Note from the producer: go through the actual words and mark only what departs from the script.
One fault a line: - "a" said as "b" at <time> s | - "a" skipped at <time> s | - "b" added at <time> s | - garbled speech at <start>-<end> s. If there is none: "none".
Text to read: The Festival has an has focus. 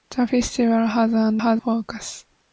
none